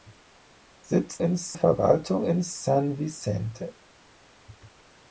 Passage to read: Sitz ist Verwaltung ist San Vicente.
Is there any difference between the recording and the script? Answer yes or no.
no